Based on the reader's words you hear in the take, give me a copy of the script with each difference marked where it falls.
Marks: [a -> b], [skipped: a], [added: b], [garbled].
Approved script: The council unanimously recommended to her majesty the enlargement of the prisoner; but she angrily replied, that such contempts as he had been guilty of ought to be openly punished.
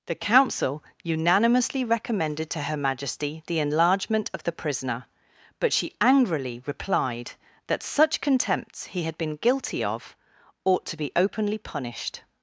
The council unanimously recommended to her majesty the enlargement of the prisoner; but she angrily replied, that such contempts [skipped: as] he had been guilty of ought to be openly punished.